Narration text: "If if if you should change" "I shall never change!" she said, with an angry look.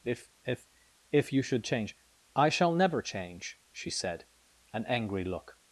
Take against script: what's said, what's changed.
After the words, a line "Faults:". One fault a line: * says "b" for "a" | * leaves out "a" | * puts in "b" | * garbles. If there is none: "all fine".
"If if if you should change" "I shall never change!" she said, an angry look.
Faults:
* leaves out "with"